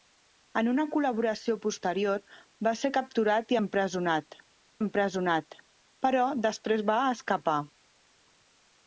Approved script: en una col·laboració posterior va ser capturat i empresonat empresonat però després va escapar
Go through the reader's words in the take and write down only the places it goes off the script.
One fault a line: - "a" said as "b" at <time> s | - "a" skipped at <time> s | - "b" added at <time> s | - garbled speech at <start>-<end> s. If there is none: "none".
none